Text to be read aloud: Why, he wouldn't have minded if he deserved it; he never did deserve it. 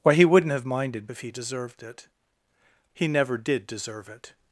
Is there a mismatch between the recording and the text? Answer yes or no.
no